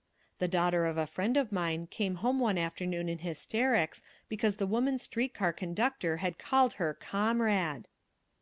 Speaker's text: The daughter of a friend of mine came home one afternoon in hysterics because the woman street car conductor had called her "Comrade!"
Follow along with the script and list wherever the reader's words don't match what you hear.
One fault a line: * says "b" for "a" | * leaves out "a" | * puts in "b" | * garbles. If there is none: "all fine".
all fine